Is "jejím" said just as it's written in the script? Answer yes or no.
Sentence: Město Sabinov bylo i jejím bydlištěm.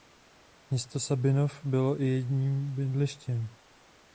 yes